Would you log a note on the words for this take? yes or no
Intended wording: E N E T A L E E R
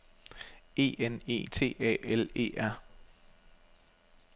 yes